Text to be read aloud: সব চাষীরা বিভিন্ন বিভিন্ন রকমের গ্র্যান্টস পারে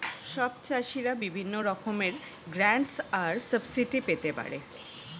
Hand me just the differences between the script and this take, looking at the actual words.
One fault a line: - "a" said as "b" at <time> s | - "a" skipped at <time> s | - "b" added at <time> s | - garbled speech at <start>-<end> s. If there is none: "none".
- "বিভিন্ন" skipped at 1.5 s
- "আর সাবসিডি পেতে" added at 3.2 s